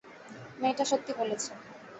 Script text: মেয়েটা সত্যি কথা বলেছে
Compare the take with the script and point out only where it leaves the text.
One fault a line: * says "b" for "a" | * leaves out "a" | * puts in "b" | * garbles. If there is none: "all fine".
* leaves out "কথা"